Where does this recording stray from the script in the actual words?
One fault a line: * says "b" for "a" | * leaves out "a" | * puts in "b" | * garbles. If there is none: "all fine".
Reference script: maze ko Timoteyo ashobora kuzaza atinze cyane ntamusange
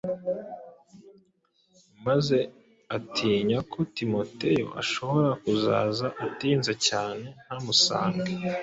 * puts in "atinya"